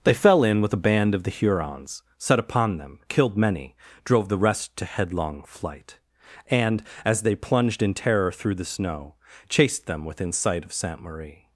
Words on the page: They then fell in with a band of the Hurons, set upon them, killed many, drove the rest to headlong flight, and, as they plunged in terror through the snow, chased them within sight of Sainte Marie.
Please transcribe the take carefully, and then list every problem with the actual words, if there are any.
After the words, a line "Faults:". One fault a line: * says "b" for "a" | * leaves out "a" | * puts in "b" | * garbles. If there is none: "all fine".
They fell in with a band of the Hurons, set upon them, killed many, drove the rest to headlong flight, and, as they plunged in terror through the snow, chased them within sight of Sainte Marie.
Faults:
* leaves out "then"